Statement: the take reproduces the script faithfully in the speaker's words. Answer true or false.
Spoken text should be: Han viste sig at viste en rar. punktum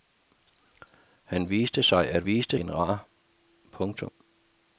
true